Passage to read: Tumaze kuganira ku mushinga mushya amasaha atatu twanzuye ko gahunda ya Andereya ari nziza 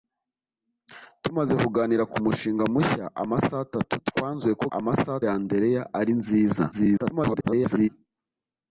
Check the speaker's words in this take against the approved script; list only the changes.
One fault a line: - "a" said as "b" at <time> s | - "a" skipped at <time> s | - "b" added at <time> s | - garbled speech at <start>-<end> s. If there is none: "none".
- "gahunda" said as "amasaha" at 4.8 s
- garbled speech at 6.7-7.9 s